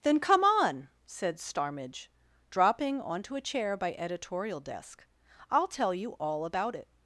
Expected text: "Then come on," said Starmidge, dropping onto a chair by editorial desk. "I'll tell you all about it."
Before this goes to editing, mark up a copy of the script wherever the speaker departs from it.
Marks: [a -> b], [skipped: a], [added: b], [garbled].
"Then come on," said Starmidge, dropping onto a chair by editorial desk. "I'll tell you all about it."